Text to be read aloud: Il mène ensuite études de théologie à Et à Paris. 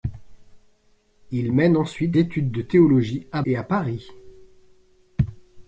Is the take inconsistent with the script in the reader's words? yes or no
no